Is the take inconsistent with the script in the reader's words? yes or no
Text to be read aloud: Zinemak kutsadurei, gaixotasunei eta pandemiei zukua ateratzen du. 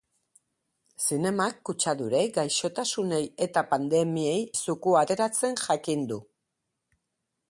yes